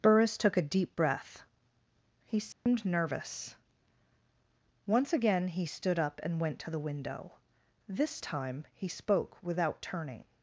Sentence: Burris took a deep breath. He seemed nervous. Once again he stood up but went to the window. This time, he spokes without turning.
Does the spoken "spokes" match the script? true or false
false